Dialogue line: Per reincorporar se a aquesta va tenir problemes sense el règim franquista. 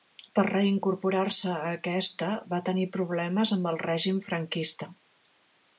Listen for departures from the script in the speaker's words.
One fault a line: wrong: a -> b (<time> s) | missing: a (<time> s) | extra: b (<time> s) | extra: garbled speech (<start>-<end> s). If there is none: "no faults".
wrong: sense -> amb (3.6 s)